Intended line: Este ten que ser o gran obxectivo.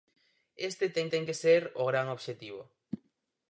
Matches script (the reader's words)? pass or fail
fail